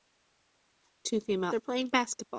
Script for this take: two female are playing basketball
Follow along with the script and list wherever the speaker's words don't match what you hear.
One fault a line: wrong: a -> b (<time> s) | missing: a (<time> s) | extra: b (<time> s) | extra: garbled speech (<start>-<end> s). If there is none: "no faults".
no faults